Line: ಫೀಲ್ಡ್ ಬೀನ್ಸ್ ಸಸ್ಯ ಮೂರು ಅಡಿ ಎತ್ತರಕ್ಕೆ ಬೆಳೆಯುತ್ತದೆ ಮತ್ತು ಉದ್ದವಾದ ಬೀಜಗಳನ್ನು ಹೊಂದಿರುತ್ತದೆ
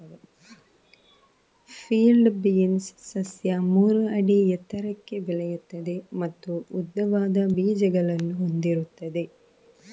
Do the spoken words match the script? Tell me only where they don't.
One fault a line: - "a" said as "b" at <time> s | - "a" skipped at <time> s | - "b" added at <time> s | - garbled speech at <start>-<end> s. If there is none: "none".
none